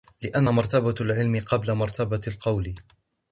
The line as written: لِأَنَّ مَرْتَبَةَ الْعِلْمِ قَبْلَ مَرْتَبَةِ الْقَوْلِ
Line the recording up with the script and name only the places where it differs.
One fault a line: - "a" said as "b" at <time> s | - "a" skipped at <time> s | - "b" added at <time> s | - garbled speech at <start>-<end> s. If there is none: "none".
none